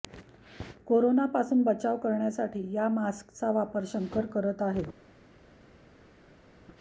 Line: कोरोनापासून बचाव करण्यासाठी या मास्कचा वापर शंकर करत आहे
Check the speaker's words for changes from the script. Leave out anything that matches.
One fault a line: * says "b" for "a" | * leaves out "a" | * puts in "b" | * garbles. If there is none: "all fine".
all fine